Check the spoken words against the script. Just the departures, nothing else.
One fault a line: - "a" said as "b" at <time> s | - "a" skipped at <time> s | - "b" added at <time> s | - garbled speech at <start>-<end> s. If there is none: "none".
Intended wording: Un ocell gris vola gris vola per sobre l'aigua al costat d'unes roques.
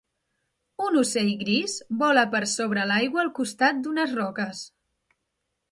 - "gris vola" skipped at 2.2 s